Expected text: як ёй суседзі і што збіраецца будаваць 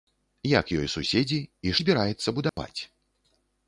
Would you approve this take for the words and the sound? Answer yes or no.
no